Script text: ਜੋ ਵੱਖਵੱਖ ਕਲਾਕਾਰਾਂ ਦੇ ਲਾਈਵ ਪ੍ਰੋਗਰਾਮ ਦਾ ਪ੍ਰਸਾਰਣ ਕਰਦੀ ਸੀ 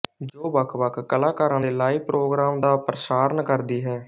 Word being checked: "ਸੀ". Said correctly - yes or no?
no